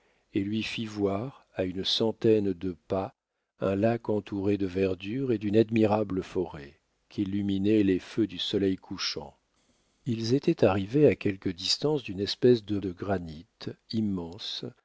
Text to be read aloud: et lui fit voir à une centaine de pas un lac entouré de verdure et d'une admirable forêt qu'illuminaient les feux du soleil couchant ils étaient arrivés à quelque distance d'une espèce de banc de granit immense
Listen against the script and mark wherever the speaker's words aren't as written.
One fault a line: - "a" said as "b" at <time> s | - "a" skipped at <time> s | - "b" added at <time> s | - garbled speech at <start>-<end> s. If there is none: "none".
- "banc" skipped at 12.8 s